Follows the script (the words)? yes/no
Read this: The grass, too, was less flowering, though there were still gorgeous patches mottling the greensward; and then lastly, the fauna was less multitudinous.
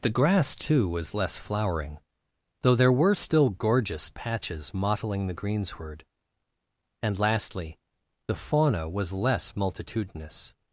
no